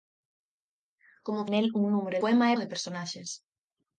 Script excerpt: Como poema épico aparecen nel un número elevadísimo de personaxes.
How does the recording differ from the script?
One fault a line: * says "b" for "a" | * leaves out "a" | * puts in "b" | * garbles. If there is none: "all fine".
* leaves out "poema épico aparecen"
* says "poema" for "elevadísimo"